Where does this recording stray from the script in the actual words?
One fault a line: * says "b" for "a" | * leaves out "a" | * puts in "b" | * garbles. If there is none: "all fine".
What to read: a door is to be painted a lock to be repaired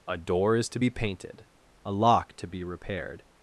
all fine